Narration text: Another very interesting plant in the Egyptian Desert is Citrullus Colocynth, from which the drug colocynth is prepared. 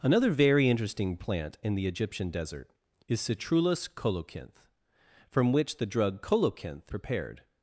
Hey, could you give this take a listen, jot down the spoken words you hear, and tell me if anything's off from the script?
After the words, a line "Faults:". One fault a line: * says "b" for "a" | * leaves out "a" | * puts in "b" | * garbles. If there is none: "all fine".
Another very interesting plant in the Egyptian Desert is Citrullus Colocynth, from which the drug colocynth prepared.
Faults:
* leaves out "is"